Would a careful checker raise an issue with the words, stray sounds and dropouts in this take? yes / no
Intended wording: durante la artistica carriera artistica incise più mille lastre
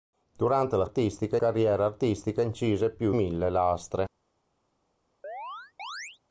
yes